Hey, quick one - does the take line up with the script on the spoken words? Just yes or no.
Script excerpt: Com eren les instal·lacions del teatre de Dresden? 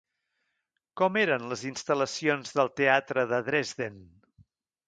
yes